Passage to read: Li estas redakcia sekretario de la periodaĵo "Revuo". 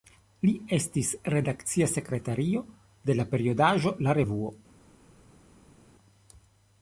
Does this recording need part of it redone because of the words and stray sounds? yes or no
yes